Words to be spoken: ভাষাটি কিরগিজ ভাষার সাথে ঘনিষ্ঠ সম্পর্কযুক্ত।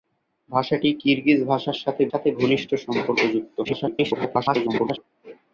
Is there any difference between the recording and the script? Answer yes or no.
yes